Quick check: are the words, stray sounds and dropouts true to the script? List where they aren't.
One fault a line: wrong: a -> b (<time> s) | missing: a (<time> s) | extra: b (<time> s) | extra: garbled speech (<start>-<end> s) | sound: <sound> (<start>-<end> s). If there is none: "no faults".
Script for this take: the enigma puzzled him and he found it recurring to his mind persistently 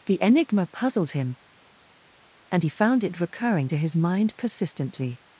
no faults